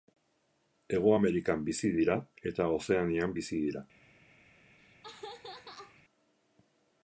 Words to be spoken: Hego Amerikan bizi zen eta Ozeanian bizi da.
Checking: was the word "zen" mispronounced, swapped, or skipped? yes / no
yes